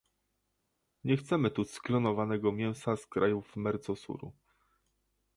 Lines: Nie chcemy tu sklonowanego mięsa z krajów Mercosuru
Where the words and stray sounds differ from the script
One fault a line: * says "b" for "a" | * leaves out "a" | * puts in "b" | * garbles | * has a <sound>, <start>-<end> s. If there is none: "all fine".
all fine